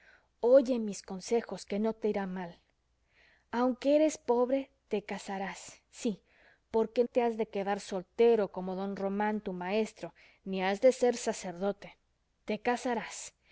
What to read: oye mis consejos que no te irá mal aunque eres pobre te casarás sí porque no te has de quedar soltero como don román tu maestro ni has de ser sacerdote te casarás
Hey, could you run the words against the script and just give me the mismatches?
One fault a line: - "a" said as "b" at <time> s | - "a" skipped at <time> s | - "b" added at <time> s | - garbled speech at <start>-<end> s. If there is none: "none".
- "no" skipped at 7.0 s